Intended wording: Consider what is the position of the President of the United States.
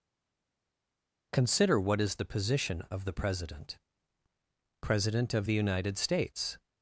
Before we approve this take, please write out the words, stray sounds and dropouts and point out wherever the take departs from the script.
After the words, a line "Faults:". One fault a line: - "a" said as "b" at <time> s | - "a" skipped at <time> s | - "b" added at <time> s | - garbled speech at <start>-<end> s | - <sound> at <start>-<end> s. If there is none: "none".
Consider what is the position of the President President of the United States.
Faults:
- "President" added at 4.8 s